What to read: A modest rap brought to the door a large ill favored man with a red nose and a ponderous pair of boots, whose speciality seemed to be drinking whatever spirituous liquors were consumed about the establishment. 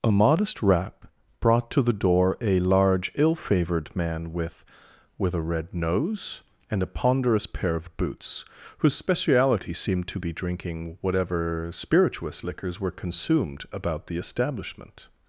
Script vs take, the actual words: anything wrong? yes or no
yes